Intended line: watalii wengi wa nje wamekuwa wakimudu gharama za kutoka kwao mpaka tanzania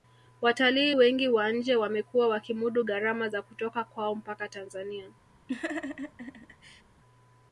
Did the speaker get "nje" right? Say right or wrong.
right